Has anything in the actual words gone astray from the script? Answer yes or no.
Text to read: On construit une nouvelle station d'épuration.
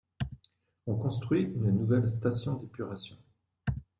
no